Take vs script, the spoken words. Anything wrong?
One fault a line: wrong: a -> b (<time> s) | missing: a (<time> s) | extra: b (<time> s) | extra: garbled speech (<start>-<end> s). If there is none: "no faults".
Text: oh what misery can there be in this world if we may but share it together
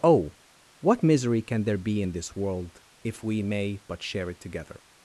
no faults